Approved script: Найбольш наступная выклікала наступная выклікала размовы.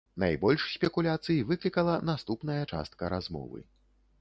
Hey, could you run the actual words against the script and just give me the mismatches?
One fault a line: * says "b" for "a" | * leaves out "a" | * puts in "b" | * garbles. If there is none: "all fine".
* says "спекуляцый" for "наступная"
* says "частка" for "выклікала"